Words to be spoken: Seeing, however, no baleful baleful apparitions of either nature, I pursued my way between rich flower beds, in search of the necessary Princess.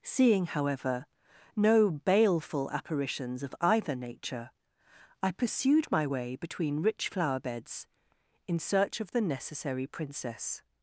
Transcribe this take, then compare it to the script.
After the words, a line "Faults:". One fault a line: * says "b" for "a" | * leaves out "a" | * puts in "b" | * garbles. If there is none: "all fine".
Seeing, however, no baleful apparitions of either nature, I pursued my way between rich flower beds, in search of the necessary Princess.
Faults:
* leaves out "baleful"